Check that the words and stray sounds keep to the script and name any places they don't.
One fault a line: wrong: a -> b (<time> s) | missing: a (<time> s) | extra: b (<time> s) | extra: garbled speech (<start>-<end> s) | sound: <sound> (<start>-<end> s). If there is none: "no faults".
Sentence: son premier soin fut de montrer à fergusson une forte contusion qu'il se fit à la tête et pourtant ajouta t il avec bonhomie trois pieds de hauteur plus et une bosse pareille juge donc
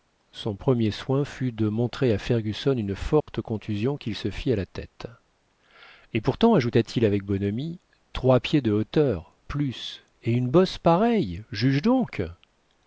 sound: dropout (3.2-3.3 s)